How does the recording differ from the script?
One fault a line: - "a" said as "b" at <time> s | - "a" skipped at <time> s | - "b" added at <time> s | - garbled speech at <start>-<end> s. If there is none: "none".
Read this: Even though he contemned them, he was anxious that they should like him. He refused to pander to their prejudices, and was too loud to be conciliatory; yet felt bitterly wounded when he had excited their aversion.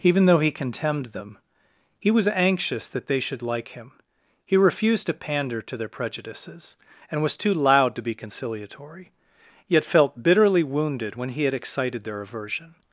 none